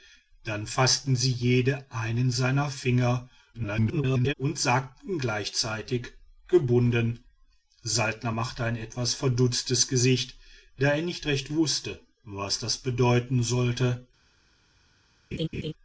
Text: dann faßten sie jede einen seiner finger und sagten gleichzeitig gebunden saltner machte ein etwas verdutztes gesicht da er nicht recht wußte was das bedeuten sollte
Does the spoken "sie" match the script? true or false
true